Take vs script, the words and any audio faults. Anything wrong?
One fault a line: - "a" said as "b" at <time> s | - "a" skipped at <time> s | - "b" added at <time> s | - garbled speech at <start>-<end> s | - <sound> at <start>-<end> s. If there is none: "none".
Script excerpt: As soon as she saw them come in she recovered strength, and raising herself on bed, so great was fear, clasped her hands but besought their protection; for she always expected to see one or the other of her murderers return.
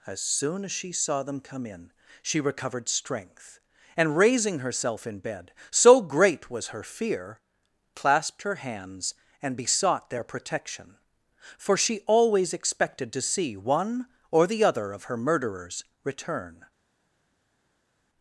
- "on" said as "in" at 5.1 s
- "her" added at 6.7 s
- "but" said as "and" at 9.4 s